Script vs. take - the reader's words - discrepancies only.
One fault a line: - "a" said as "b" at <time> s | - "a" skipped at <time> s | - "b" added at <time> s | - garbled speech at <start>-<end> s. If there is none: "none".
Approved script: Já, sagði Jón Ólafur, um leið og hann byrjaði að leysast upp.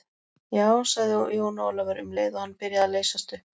none